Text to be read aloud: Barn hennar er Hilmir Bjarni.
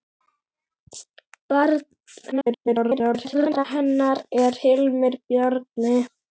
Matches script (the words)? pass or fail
fail